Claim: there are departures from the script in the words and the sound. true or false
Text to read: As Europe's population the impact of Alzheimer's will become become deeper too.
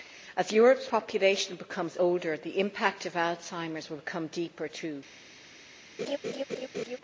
true